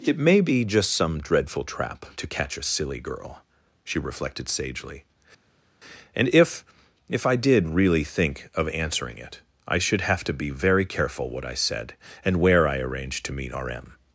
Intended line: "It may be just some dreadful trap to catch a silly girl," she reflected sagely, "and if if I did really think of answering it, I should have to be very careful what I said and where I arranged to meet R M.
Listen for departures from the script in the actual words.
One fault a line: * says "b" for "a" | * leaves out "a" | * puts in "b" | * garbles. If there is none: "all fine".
all fine